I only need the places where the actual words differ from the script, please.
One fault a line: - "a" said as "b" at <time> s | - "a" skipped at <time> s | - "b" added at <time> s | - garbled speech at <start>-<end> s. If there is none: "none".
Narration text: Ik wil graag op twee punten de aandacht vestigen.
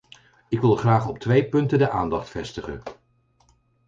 none